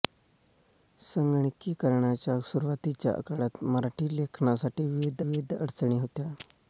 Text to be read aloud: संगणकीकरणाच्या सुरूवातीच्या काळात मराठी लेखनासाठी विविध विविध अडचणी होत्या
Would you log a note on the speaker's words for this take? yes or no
no